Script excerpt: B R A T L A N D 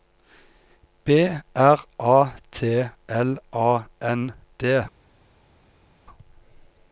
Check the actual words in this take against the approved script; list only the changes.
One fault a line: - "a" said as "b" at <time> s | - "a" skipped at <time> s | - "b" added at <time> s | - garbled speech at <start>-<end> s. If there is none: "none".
none